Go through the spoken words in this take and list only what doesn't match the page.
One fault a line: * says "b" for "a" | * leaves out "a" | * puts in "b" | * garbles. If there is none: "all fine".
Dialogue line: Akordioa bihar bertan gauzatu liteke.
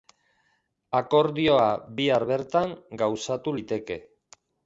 all fine